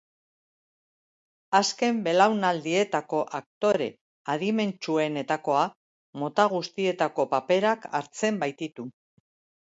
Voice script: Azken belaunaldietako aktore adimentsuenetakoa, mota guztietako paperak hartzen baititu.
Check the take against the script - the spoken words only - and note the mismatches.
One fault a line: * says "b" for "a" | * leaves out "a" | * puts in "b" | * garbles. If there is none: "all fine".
all fine